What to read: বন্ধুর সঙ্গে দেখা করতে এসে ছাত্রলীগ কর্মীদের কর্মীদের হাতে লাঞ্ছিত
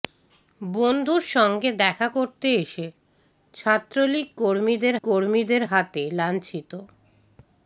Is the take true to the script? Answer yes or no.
yes